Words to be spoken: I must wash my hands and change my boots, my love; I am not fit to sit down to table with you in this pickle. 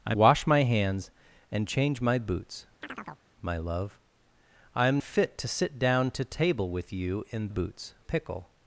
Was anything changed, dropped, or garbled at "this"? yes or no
yes